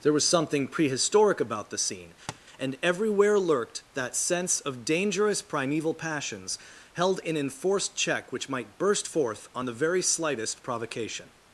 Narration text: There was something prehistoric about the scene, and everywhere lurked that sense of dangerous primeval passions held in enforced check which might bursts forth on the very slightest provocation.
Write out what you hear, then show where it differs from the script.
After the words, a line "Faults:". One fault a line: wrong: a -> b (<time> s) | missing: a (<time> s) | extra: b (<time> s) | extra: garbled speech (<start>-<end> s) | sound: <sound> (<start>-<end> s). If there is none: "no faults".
There was something prehistoric about the scene, and everywhere lurked that sense of dangerous primeval passions held in enforced check which might burst forth on the very slightest provocation.
Faults:
sound: tap (2.3-2.4 s)
wrong: bursts -> burst (8.8 s)